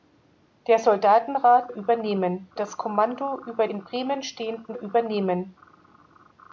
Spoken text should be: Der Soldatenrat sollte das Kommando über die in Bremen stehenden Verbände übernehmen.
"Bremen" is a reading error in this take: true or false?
false